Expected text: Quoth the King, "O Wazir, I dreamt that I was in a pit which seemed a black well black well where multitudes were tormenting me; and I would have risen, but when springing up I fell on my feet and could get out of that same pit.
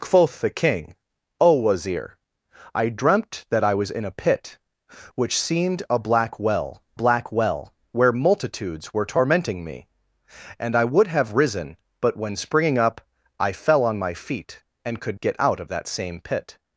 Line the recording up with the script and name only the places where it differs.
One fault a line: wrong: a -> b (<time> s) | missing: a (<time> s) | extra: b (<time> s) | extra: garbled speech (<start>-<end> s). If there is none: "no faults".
no faults